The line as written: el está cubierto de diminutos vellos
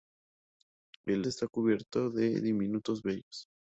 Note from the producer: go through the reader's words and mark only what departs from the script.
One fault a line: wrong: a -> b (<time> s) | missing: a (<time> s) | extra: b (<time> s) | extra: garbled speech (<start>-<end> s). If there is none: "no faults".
no faults